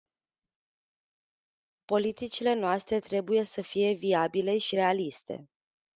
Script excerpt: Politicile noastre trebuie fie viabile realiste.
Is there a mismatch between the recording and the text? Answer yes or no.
yes